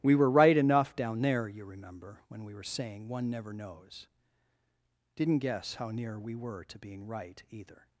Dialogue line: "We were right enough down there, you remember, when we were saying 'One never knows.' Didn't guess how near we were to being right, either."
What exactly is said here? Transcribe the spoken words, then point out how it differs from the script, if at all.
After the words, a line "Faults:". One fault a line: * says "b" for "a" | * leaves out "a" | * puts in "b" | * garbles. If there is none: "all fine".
"We were right enough down there, you remember, when we were saying 'One never knows.' Didn't guess how near we were to being right, either."
Faults:
all fine